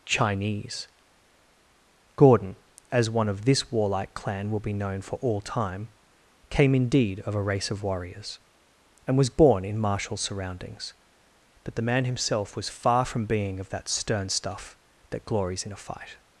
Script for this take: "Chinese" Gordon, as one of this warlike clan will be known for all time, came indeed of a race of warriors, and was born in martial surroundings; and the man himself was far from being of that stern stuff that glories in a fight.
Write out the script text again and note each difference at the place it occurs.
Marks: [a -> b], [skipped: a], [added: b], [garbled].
"Chinese" Gordon, as one of this warlike clan will be known for all time, came indeed of a race of warriors, and was born in martial surroundings; [and -> but] the man himself was far from being of that stern stuff that glories in a fight.